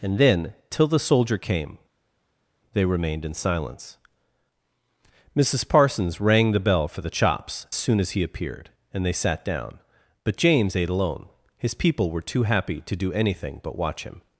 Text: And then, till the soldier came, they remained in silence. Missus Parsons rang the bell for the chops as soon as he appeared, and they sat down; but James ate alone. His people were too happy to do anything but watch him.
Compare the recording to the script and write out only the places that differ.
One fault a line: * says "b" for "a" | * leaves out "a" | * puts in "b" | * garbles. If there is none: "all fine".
* leaves out "as"